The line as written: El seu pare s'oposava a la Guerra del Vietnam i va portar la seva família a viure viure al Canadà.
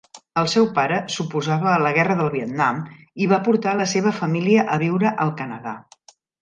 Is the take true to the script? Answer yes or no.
no